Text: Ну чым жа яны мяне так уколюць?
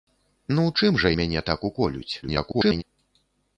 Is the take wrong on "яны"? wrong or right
wrong